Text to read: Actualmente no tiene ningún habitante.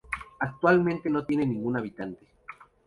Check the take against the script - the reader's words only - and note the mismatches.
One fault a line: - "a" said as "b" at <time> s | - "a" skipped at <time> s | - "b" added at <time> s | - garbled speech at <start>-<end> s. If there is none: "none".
none